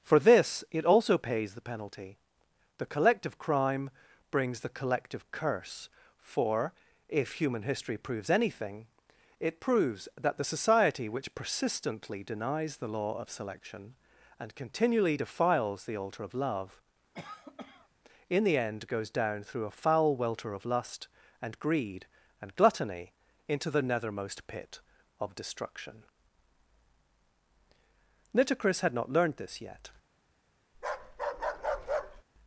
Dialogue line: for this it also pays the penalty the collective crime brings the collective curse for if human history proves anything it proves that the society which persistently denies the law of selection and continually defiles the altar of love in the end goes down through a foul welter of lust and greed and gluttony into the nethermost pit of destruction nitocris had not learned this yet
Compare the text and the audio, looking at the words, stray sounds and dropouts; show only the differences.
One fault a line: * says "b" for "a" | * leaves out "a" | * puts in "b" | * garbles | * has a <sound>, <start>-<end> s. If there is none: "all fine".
* has a cough, 17.1-17.9 s
* has a bark, 30.7-32.2 s